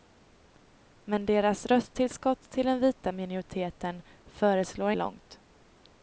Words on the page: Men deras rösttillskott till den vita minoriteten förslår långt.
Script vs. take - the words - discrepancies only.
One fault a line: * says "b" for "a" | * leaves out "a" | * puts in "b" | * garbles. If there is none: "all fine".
all fine